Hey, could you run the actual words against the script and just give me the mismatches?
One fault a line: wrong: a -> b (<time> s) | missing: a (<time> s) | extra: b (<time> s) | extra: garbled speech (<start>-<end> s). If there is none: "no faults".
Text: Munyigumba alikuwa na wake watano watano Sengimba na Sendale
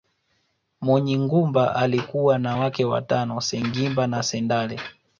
missing: watano (3.4 s)